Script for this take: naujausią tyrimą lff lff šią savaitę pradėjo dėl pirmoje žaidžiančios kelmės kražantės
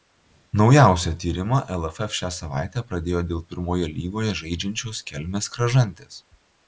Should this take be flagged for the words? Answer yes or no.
yes